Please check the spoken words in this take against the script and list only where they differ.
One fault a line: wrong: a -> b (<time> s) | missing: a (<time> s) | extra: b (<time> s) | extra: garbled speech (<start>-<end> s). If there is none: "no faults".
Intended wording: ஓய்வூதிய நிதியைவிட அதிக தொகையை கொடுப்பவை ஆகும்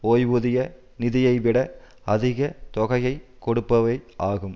no faults